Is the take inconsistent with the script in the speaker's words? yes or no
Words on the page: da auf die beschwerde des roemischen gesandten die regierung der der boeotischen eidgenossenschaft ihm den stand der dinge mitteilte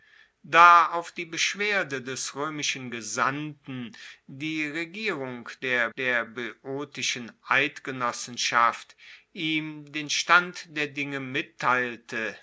no